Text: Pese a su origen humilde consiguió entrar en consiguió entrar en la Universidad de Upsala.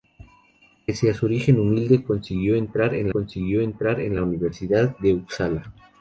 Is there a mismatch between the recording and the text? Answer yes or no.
no